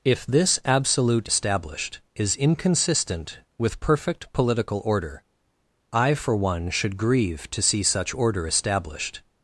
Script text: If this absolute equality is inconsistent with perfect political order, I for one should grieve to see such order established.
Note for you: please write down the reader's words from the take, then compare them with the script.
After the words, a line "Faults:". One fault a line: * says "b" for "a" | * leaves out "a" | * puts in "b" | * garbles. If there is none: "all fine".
If this absolute established is inconsistent with perfect political order, I for one should grieve to see such order established.
Faults:
* says "established" for "equality"